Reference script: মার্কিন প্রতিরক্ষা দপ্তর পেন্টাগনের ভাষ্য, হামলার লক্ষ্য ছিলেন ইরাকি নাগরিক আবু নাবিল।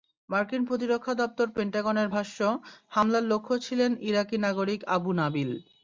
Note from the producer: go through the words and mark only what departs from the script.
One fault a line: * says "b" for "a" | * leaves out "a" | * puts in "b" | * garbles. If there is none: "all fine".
all fine